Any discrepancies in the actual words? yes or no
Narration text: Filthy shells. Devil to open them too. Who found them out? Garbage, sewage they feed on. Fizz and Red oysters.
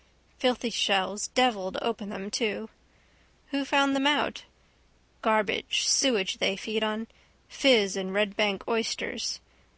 yes